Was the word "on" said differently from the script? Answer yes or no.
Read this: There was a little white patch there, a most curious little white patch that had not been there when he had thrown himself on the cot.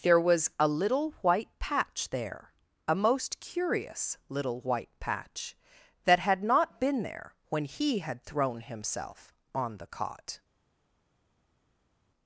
no